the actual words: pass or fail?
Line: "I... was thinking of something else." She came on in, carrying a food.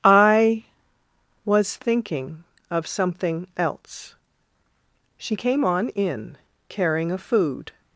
pass